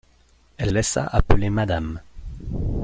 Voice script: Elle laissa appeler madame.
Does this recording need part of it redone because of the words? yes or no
no